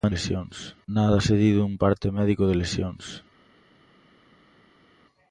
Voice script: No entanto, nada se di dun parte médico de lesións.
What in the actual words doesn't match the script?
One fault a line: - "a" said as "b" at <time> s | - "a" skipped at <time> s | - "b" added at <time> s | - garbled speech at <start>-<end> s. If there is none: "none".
- "entanto" said as "lesións" at 0.1 s